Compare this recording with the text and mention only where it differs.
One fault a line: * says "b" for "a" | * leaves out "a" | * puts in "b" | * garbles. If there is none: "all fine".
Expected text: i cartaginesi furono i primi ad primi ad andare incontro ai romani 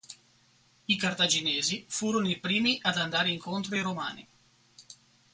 * leaves out "primi ad"